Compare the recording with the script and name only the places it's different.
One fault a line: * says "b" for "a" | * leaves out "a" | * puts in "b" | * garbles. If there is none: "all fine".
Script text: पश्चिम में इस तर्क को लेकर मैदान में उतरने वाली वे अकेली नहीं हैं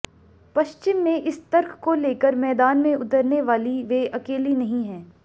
all fine